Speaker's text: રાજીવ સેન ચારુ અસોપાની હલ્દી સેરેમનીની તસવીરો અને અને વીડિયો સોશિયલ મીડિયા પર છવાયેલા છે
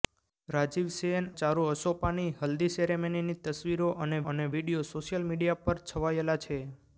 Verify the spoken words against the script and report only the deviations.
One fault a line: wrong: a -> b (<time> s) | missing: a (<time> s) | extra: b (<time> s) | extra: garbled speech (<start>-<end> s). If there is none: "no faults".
no faults